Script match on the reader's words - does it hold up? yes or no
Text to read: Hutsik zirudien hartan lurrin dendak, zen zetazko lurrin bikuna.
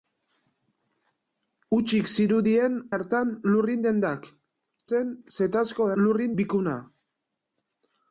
yes